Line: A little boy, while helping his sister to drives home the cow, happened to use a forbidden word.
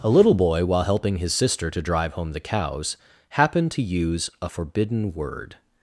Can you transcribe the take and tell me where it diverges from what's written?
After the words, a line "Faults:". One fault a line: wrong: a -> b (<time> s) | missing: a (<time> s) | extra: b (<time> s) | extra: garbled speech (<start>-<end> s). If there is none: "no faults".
A little boy, while helping his sister to drive home the cows, happened to use a forbidden word.
Faults:
wrong: drives -> drive (1.8 s)
wrong: cow -> cows (2.4 s)